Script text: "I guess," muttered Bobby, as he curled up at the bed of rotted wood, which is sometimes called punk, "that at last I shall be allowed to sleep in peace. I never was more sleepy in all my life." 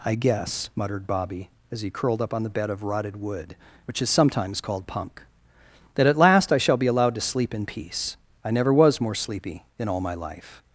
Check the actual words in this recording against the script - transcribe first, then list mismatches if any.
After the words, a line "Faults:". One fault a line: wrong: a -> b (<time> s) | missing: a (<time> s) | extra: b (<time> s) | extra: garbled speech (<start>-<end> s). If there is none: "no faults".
"I guess," muttered Bobby, as he curled up on the bed of rotted wood, which is sometimes called punk, "that at last I shall be allowed to sleep in peace. I never was more sleepy in all my life."
Faults:
wrong: at -> on (2.3 s)